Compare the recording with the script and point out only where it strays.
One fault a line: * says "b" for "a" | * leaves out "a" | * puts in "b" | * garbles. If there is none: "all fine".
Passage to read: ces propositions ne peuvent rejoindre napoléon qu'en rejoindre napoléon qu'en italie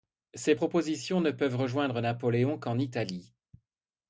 * leaves out "rejoindre napoléon qu'en"